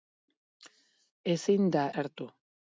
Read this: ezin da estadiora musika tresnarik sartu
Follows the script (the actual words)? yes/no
no